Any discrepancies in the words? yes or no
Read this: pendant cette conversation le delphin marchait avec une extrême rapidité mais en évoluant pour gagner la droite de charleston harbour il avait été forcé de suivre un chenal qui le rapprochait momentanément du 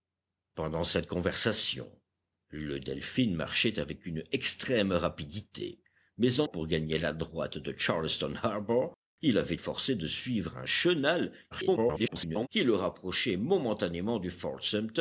yes